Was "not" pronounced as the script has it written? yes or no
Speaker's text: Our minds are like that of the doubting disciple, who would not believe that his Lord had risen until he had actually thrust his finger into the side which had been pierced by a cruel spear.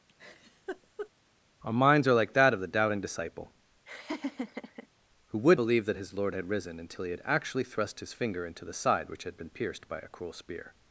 no